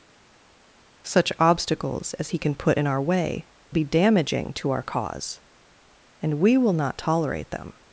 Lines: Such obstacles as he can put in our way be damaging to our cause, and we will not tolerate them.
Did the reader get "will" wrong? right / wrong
right